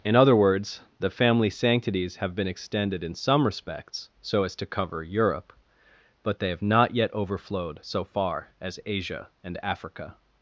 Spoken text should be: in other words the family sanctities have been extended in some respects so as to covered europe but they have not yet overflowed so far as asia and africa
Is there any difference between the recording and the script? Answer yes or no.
yes